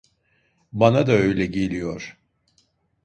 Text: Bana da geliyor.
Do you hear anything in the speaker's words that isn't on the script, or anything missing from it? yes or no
yes